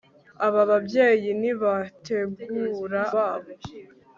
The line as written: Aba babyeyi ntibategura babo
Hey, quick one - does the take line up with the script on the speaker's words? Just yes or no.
yes